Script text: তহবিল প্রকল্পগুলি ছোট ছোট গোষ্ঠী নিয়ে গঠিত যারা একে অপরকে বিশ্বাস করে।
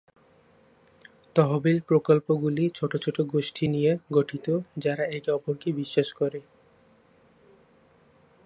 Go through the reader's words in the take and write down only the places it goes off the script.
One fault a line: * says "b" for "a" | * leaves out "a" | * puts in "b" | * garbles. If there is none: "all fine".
all fine